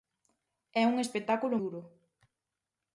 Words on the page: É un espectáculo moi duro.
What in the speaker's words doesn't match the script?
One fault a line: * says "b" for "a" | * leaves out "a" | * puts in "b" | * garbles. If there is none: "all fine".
* leaves out "moi"